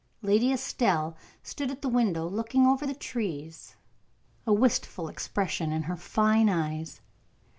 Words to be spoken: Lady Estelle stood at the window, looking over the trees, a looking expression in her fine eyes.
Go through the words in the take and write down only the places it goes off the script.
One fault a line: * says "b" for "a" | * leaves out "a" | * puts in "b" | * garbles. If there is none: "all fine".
* says "wistful" for "looking"